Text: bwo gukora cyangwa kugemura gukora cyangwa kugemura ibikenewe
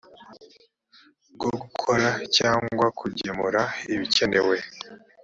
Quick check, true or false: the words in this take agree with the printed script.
false